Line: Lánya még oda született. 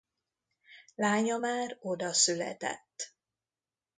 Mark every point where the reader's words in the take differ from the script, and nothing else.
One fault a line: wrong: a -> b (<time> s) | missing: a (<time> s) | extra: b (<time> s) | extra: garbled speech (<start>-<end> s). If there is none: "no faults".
wrong: még -> már (1.4 s)